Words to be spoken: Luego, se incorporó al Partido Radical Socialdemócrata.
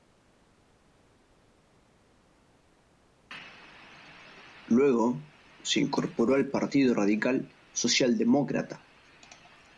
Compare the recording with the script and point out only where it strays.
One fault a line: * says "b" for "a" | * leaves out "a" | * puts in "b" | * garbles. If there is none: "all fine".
all fine